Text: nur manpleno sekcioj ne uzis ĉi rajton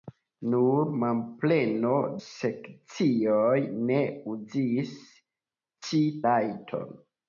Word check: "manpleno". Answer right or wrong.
right